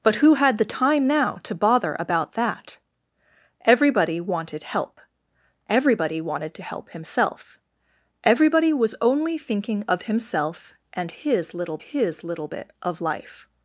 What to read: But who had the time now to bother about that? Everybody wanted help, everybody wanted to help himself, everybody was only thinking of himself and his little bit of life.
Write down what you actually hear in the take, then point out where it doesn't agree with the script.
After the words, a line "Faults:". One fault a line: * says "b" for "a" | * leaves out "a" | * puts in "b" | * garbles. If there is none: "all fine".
But who had the time now to bother about that? Everybody wanted help, everybody wanted to help himself, everybody was only thinking of himself and his little his little bit of life.
Faults:
* puts in "his little"